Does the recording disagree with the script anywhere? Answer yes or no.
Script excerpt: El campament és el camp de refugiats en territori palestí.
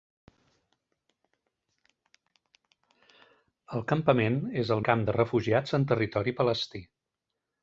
no